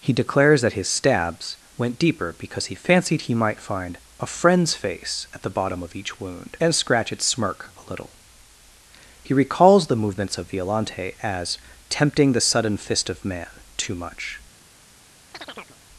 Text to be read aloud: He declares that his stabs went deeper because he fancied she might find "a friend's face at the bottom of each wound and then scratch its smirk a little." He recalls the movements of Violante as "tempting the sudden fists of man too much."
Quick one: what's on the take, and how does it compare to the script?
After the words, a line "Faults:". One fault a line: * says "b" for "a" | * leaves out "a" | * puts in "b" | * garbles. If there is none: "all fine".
He declares that his stabs went deeper because he fancied he might find "a friend's face at the bottom of each wound and scratch its smirk a little." He recalls the movements of Violante as "tempting the sudden fist of man too much."
Faults:
* says "he" for "she"
* leaves out "then"
* says "fist" for "fists"